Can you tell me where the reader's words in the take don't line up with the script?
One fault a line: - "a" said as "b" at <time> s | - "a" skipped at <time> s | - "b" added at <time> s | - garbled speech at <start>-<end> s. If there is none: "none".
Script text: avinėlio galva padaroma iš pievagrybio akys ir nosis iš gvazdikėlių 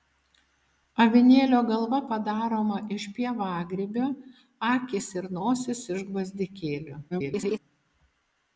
- garbled speech at 7.1-7.6 s